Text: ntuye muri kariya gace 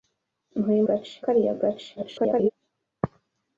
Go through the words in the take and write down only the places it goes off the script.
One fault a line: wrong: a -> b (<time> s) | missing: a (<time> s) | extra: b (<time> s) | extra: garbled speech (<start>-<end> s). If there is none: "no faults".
wrong: muri -> gace (0.9 s)
extra: garbled speech (1.9-2.5 s)